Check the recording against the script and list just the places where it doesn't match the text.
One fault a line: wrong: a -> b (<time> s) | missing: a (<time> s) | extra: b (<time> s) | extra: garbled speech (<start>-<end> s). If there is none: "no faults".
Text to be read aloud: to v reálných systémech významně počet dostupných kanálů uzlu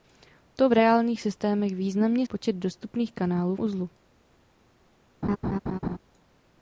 no faults